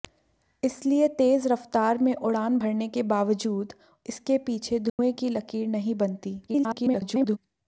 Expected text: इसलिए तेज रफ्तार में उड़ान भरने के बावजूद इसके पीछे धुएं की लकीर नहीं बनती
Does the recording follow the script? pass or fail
fail